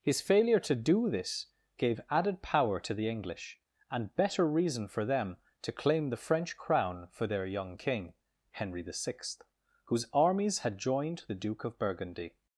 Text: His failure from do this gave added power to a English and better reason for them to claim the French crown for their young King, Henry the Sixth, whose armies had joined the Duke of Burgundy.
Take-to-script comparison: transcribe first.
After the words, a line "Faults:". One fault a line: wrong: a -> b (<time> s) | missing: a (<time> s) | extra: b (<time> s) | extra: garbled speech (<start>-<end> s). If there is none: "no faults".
His failure to do this gave added power to the English and better reason for them to claim the French crown for their young King, Henry the Sixth, whose armies had joined the Duke of Burgundy.
Faults:
wrong: from -> to (0.6 s)
wrong: a -> the (2.9 s)